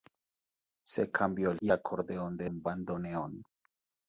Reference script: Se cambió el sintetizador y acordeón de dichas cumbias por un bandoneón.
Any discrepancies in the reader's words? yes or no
yes